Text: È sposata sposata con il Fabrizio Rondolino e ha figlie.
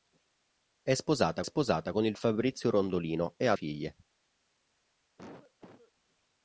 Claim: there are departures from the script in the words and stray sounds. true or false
true